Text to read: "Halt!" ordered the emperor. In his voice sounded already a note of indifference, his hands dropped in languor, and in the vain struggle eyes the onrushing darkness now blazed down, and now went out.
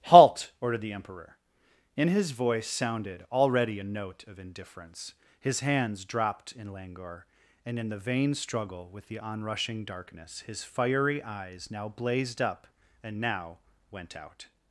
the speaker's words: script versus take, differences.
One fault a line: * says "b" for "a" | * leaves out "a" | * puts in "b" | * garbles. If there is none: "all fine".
* says "with" for "eyes"
* puts in "his fiery eyes"
* says "up" for "down"